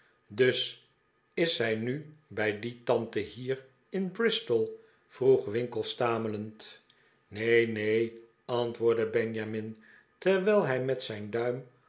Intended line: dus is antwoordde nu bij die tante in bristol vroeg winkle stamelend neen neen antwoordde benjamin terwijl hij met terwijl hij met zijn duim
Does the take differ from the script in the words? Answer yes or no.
yes